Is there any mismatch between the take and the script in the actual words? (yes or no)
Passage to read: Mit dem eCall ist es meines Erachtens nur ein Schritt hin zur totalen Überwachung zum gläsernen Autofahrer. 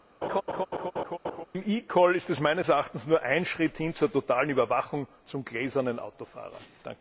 no